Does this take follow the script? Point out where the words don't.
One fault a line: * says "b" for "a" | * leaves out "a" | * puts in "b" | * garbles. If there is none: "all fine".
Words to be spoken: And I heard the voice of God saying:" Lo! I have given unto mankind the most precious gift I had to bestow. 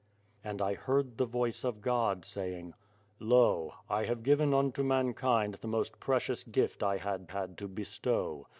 * puts in "had"